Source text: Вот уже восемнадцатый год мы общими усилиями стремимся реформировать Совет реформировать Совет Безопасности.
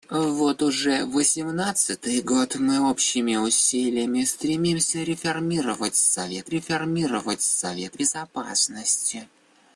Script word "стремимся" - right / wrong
right